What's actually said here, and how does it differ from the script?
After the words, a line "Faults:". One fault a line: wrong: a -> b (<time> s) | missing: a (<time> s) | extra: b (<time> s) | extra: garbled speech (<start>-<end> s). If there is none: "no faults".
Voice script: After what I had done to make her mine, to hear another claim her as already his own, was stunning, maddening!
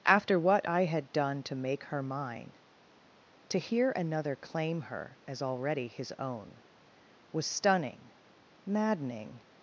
After what I had done to make her mine, to hear another claim her as already his own, was stunning, maddening!
Faults:
no faults